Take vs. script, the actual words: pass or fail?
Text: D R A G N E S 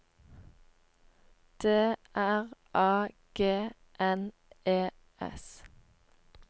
pass